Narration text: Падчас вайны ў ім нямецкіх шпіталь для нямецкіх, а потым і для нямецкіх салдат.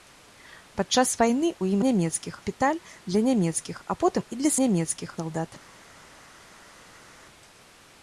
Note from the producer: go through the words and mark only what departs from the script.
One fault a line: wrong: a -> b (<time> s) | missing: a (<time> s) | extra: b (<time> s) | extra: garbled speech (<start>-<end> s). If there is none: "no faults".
no faults